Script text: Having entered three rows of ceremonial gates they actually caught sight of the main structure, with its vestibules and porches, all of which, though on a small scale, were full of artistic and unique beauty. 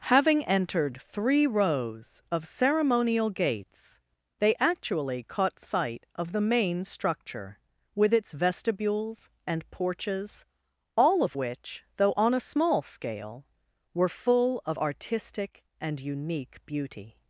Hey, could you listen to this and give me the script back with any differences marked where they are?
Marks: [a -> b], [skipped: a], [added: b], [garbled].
Having entered three rows of ceremonial gates they actually caught sight of the main structure, with its vestibules and porches, all of which, though on a small scale, were full of artistic and unique beauty.